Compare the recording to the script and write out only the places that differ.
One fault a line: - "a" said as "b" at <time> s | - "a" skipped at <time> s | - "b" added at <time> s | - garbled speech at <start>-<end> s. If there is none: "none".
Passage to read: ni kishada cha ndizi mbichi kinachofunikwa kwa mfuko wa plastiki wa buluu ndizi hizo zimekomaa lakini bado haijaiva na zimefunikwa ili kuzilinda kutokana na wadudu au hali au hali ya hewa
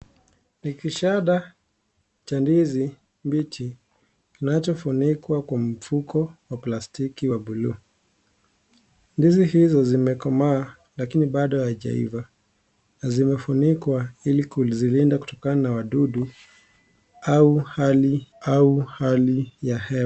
none